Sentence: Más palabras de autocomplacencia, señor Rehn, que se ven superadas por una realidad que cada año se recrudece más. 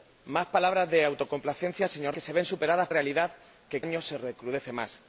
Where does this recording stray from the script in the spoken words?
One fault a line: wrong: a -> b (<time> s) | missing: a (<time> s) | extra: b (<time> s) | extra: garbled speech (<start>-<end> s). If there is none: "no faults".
missing: Rehn (2.1 s)
missing: por una (2.9 s)
missing: cada (3.8 s)